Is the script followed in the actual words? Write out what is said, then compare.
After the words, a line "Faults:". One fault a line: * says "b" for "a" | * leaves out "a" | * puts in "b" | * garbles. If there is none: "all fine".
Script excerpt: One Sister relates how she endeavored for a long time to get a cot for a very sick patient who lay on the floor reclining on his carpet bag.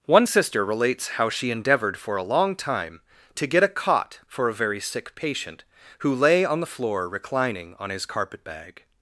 One Sister relates how she endeavored for a long time to get a cot for a very sick patient who lay on the floor reclining on his carpet bag.
Faults:
all fine